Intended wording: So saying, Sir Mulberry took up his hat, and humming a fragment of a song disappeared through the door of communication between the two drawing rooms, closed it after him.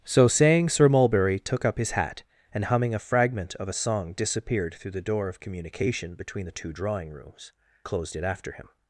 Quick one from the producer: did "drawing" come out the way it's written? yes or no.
yes